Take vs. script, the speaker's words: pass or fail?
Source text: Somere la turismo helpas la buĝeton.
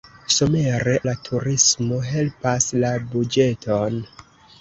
pass